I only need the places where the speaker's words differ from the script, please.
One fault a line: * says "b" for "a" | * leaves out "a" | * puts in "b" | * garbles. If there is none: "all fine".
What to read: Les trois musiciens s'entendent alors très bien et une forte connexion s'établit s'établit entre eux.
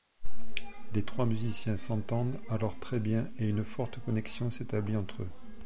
* leaves out "s'établit"